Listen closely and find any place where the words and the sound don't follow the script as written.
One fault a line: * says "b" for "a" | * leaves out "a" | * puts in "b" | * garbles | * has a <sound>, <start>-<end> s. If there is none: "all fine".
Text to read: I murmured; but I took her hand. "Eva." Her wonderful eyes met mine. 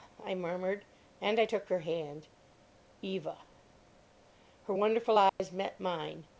* says "and" for "but"
* has a dropout, 5.3-5.4 s